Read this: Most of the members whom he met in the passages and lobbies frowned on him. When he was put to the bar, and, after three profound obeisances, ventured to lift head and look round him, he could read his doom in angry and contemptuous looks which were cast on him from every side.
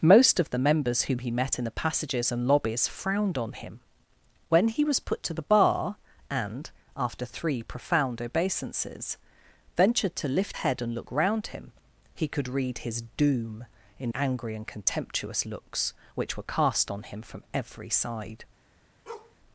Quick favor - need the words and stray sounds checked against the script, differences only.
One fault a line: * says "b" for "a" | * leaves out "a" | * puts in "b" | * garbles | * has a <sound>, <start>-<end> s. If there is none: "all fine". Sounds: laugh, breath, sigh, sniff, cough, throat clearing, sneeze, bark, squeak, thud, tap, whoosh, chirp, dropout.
* has a bark, 19.1-19.4 s